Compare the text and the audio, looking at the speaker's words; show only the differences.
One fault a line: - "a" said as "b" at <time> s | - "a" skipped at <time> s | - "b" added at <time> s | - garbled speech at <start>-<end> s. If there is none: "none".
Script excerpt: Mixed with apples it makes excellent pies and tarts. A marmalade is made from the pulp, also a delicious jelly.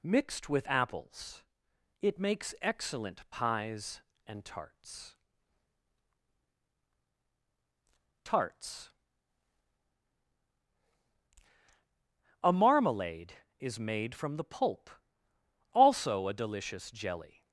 - "tarts" added at 8.3 s